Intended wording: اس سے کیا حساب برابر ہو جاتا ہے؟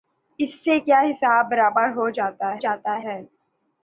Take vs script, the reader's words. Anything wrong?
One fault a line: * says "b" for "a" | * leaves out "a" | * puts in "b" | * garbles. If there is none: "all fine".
* puts in "جاتا"